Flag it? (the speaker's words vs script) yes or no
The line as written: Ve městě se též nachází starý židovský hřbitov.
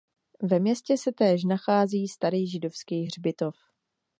no